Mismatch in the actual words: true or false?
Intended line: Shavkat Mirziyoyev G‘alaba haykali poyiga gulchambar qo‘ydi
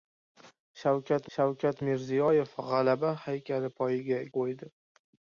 true